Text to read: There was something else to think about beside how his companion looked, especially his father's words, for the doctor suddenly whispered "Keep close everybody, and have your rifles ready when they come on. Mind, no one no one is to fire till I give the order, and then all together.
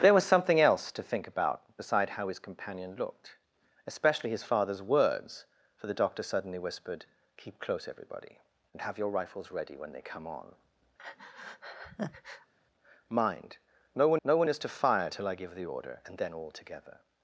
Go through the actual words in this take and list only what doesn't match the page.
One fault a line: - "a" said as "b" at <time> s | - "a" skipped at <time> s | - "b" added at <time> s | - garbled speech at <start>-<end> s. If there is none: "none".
none